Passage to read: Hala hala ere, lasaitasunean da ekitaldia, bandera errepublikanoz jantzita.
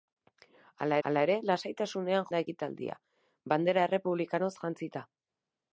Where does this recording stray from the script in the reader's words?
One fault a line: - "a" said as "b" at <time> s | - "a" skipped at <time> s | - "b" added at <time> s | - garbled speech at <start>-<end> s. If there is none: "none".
none